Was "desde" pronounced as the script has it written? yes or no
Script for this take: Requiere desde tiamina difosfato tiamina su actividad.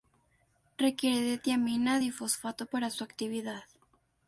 no